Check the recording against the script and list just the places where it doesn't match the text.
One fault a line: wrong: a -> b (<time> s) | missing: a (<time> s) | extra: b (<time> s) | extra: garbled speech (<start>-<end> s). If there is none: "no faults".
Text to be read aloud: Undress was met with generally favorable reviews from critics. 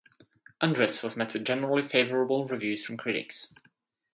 no faults